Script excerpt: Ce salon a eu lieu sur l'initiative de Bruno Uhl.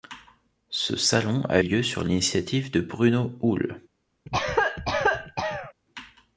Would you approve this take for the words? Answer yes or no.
no